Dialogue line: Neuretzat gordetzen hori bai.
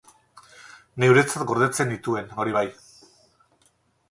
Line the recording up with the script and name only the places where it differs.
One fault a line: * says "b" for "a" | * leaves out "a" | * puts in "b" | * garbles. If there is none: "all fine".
* puts in "nituen"